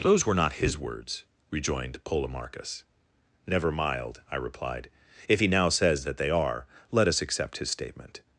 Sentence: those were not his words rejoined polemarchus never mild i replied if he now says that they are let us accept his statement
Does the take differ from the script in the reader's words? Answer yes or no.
no